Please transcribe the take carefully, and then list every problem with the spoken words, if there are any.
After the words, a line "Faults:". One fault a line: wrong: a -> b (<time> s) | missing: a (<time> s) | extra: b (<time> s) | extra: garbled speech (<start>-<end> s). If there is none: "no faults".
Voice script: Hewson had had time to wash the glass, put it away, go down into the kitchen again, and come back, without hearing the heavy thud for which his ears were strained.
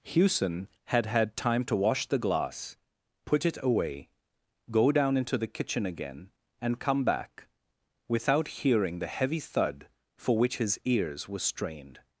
Hewson had had time to wash the glass, put it away, go down into the kitchen again, and come back, without hearing the heavy thud for which his ears were strained.
Faults:
no faults